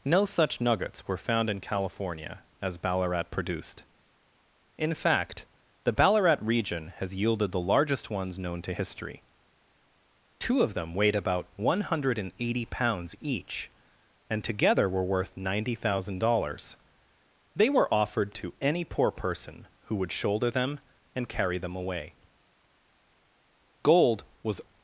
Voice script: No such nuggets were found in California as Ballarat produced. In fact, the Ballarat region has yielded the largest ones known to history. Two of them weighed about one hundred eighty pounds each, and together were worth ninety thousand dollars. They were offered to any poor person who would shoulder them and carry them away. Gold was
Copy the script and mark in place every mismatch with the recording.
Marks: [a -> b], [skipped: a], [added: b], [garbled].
No such nuggets were found in California as Ballarat produced. In fact, the Ballarat region has yielded the largest ones known to history. Two of them weighed about one hundred eighty pounds each, and together were worth ninety thousand dollars. They were offered to any poor person who would shoulder them and carry them away. Gold was